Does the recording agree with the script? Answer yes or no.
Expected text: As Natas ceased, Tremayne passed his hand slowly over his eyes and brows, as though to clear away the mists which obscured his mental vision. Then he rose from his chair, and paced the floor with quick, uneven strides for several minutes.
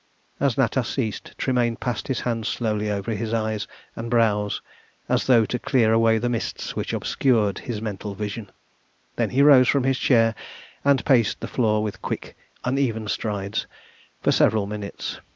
yes